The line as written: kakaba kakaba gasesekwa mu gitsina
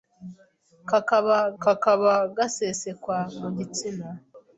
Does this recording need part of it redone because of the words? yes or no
no